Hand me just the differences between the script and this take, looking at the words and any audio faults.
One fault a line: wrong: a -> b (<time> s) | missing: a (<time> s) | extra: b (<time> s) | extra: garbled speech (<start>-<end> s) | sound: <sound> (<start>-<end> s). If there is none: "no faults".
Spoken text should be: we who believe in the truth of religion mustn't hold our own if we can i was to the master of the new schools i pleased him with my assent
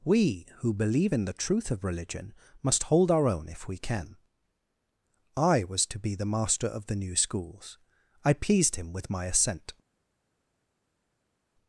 wrong: mustn't -> must (2.6 s)
extra: be (6.0 s)